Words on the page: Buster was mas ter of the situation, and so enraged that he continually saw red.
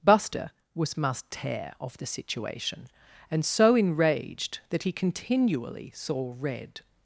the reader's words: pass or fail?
fail